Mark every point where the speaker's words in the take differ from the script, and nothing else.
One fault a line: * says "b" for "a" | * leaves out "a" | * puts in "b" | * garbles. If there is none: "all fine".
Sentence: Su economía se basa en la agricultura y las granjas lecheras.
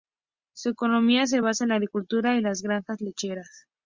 all fine